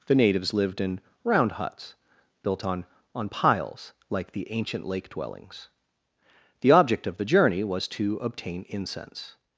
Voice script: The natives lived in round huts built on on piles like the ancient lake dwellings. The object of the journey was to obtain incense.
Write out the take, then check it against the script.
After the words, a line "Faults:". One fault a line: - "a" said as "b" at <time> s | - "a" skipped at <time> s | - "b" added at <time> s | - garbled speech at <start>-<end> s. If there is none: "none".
The natives lived in round huts built on on piles like the ancient lake dwellings. The object of the journey was to obtain incense.
Faults:
none